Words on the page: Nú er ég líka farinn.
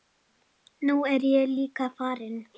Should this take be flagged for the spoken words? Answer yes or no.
no